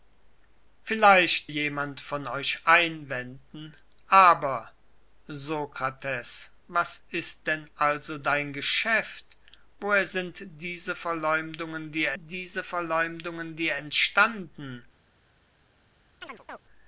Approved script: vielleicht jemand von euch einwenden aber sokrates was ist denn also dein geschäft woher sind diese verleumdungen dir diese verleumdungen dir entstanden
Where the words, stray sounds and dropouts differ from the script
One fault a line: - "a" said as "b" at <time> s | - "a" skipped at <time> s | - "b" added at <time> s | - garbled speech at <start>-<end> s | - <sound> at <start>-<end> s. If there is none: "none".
- chirp at 16.2-16.6 s